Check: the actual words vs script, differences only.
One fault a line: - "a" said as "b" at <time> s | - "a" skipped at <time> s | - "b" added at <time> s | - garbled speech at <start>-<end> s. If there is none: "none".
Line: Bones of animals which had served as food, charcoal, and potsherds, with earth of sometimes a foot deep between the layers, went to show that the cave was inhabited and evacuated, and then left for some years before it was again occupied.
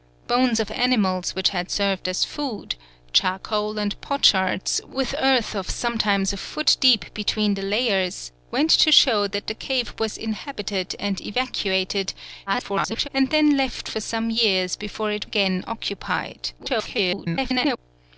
- garbled speech at 12.5-13.1 s
- "was" skipped at 15.3 s
- garbled speech at 16.6-17.8 s